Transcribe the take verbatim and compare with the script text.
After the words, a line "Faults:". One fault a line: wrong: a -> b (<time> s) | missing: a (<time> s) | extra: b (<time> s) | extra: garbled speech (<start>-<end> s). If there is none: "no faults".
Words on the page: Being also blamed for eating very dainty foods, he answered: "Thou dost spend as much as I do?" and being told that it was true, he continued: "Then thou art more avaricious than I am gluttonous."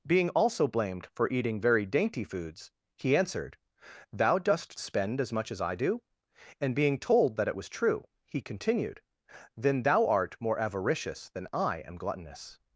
Being also blamed for eating very dainty foods, he answered: "Thou dost spend as much as I do?" and being told that it was true, he continued: "Then thou art more avaricious than I am gluttonous."
Faults:
no faults